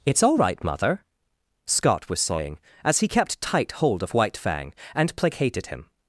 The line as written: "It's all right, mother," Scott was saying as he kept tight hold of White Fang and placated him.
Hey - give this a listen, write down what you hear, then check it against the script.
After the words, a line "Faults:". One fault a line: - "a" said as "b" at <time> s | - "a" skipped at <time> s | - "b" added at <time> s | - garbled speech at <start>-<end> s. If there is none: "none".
"It's all right, mother," Scott was saying as he kept tight hold of White Fang and placated him.
Faults:
none